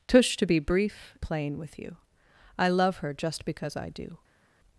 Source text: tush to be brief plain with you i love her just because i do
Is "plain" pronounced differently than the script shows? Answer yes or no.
no